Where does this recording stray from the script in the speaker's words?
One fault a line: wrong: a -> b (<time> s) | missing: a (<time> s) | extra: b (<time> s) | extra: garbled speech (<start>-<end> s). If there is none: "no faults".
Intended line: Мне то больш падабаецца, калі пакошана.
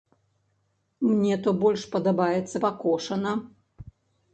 missing: калі (2.6 s)